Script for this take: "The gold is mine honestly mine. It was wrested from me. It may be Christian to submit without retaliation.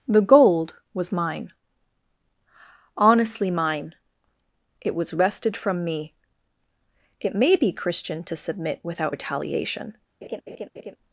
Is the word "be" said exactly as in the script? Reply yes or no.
yes